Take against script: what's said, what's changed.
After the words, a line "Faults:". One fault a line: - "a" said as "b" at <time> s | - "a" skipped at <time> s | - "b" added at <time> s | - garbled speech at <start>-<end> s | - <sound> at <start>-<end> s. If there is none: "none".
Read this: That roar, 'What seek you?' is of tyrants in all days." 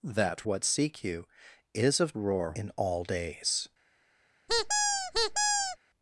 That 'What seek you?' is of roar in all days."
Faults:
- "roar" skipped at 0.5 s
- "tyrants" said as "roar" at 2.2 s
- squeak at 4.5-5.8 s